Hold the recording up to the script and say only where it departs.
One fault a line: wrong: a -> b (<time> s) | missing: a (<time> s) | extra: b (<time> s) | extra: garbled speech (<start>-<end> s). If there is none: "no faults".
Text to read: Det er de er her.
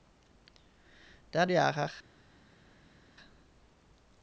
no faults